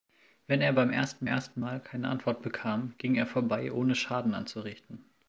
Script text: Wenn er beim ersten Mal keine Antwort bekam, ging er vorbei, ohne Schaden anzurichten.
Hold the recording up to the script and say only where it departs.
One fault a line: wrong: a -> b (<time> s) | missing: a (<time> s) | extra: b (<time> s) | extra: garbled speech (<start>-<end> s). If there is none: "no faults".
extra: ersten (1.2 s)